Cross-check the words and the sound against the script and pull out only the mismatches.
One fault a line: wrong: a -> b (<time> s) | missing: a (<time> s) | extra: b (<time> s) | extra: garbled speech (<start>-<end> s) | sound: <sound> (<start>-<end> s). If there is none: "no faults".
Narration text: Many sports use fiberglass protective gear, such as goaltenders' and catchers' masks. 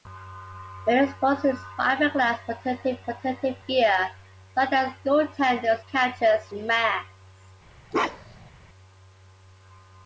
extra: protective (3.0 s)
missing: and (5.8 s)
sound: bark (7.9-8.5 s)